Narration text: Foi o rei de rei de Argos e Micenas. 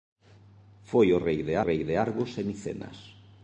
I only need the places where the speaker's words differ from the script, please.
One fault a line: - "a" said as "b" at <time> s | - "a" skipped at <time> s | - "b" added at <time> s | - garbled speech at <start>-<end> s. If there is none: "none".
none